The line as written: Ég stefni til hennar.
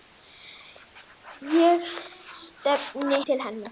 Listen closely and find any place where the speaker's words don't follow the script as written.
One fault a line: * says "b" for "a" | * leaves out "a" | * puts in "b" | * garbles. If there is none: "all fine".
all fine